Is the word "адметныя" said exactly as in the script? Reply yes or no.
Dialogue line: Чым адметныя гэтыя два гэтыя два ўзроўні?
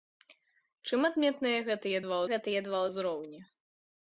yes